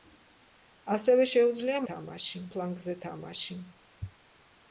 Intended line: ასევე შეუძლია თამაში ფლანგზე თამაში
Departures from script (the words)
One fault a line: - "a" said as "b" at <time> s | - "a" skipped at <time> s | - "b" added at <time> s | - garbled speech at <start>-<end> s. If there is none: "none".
none